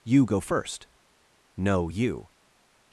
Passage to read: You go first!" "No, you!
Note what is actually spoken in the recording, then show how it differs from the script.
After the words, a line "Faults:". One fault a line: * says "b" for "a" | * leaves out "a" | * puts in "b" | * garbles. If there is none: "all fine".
You go first!" "No, you!
Faults:
all fine